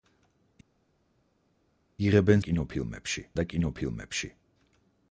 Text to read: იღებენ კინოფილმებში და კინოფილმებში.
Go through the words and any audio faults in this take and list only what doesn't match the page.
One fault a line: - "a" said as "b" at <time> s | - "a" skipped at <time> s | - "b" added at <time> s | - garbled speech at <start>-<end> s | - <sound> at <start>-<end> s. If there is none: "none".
none